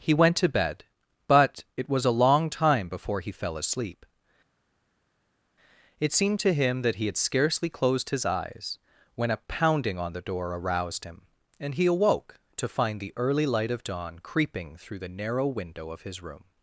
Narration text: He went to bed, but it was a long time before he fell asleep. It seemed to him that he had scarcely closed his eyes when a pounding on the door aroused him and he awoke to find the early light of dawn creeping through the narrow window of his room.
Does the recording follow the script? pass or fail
pass